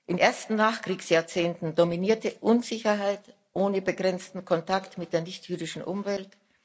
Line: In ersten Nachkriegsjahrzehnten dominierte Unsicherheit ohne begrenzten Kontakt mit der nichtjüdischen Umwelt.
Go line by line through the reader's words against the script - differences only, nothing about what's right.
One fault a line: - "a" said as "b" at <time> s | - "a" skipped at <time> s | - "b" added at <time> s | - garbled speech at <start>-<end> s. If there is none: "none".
none